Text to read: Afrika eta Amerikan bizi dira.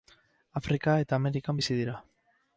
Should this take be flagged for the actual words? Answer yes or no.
no